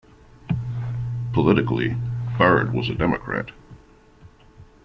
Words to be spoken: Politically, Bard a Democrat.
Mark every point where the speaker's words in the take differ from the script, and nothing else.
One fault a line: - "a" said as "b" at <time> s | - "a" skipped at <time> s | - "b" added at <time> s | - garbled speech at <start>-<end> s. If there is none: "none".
- "was" added at 2.7 s